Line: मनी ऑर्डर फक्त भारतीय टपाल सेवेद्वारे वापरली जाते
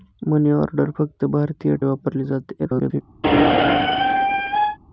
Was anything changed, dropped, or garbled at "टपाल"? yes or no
yes